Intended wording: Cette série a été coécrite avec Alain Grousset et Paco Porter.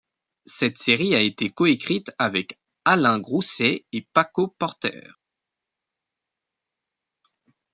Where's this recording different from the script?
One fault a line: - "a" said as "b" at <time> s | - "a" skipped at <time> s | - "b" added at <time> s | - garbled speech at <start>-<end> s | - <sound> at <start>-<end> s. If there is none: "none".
none